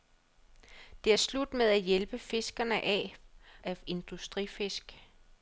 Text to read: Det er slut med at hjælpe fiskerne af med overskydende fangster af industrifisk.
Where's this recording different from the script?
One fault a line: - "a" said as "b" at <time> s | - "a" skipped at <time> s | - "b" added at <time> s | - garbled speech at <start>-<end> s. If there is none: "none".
- "med overskydende fangster" skipped at 3.2 s